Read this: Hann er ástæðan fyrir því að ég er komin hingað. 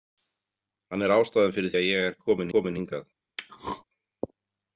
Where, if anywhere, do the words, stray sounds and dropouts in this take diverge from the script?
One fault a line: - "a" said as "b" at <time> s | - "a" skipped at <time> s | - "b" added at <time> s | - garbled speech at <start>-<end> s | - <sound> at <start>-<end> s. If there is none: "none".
- "því" skipped at 1.7 s
- "komin" added at 2.5 s
- throat clearing at 3.4-3.8 s